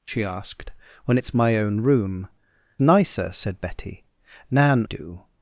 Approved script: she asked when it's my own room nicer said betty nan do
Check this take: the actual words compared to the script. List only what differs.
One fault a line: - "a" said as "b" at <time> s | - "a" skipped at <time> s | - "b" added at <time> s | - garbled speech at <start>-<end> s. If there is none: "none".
none